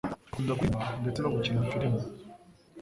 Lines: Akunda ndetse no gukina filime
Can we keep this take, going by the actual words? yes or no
no